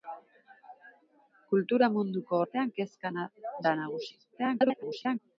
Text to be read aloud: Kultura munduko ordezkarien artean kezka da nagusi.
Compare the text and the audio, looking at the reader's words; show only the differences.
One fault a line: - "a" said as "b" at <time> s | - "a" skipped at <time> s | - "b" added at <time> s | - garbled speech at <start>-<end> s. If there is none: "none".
- "ordezkarien" skipped at 2.4 s
- garbled speech at 4.3-5.2 s